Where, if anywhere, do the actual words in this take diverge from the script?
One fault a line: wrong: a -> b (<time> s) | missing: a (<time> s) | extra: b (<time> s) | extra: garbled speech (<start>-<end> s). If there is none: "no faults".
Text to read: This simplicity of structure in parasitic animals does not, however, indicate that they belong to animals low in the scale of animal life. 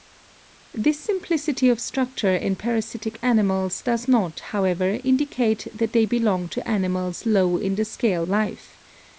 missing: of animal (8.3 s)